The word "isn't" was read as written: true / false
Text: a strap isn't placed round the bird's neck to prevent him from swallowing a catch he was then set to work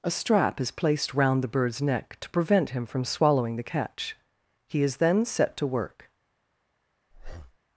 false